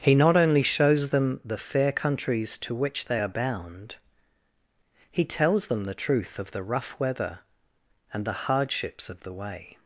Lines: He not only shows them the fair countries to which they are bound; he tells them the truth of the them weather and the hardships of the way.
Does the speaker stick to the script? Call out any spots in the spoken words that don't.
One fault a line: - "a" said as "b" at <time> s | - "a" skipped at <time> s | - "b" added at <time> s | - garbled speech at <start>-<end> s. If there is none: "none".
- "them" said as "rough" at 6.6 s